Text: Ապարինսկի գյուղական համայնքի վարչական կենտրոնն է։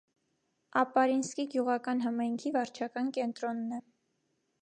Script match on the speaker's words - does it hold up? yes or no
yes